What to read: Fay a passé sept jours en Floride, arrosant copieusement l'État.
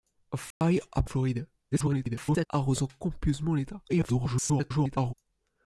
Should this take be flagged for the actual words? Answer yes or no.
yes